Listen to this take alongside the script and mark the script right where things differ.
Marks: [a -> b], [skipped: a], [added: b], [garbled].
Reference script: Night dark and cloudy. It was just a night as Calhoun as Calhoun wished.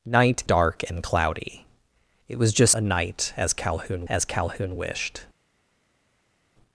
Night dark and cloudy. It was just a night as Calhoun as Calhoun wished.